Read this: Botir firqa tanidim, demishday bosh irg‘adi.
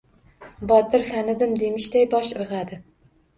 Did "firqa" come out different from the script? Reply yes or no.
yes